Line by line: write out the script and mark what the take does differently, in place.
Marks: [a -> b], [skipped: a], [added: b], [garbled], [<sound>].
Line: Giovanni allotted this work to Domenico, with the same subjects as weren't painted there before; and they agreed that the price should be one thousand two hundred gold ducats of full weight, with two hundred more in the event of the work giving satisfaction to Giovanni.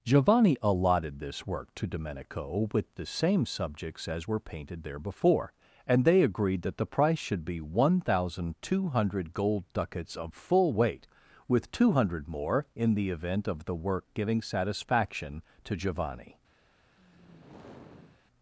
Giovanni allotted this work to Domenico, with the same subjects as [weren't -> were] painted there before; and they agreed that the price should be one thousand two hundred gold ducats of full weight, with two hundred more in the event of the work giving satisfaction to Giovanni. [sigh]